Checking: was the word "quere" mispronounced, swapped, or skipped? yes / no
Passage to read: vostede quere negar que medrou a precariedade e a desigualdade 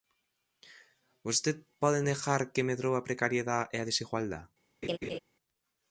yes